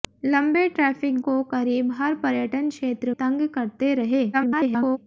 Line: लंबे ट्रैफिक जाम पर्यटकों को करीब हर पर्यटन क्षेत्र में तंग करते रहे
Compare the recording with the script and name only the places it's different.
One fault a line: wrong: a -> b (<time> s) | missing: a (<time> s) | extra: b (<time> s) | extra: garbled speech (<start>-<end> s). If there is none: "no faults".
missing: जाम पर्यटकों (1.2 s)
missing: में (3.1 s)
extra: garbled speech (4.3-5.0 s)